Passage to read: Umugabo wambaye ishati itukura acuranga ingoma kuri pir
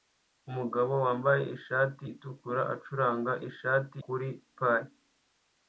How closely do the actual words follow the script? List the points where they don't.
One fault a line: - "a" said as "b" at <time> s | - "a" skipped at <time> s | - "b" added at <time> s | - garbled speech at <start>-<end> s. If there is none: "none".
- "ingoma" said as "ishati" at 3.5 s